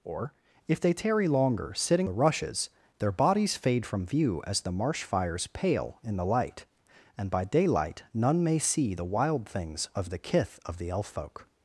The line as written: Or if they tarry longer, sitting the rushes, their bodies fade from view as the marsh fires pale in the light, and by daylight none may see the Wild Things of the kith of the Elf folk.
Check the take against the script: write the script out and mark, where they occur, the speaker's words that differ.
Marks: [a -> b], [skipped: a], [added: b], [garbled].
Or if they tarry longer, sitting the rushes, their bodies fade from view as the marsh fires pale in the light, and by daylight none may see the Wild Things of the kith of the Elf folk.